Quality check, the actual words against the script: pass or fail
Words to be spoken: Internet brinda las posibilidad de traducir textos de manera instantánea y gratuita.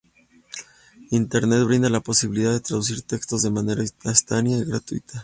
fail